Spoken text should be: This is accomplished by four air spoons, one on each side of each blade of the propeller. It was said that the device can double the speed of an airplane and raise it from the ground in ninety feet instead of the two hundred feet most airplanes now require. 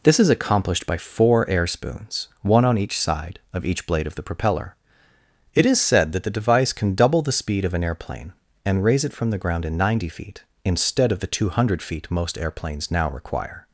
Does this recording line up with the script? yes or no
no